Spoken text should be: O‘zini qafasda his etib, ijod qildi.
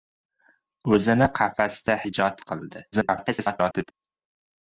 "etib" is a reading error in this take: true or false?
true